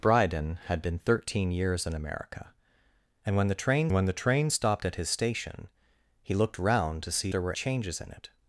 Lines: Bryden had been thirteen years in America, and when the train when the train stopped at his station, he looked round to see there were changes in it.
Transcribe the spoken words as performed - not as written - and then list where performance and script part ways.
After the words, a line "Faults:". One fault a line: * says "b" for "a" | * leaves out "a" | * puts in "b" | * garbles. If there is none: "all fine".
Bryden had been thirteen years in America, and when the train when the train stopped at his station, he looked round to see there were changes in it.
Faults:
all fine